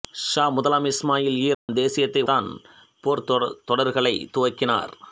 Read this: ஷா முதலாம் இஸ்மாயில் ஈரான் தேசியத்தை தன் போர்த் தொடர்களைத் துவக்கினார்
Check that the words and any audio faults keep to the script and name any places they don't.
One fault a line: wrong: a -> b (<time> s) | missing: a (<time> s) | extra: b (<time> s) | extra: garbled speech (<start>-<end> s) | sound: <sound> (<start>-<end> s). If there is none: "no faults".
sound: dropout (1.5-1.7 s)